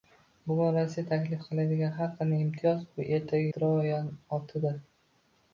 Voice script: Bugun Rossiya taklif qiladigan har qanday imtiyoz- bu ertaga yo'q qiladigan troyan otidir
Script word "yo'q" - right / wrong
wrong